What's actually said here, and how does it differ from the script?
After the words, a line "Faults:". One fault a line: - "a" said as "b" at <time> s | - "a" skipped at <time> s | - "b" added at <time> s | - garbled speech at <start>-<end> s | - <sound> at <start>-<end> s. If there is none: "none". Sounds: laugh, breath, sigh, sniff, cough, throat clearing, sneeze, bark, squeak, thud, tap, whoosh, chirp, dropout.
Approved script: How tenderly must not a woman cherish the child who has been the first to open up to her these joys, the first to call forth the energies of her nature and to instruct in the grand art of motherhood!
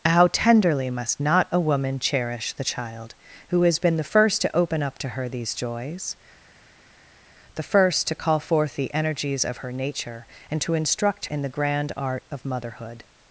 How tenderly must not a woman cherish the child who has been the first to open up to her these joys, the first to call forth the energies of her nature and to instruct in the grand art of motherhood!
Faults:
none